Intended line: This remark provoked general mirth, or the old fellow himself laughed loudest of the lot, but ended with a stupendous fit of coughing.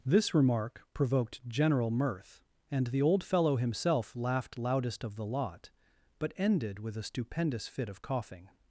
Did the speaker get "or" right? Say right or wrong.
wrong